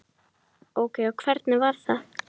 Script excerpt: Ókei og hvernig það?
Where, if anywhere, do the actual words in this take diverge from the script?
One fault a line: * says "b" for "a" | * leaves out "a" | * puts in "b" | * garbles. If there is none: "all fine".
* puts in "var"